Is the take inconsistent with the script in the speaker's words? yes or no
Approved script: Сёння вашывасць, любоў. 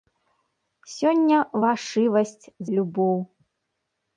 no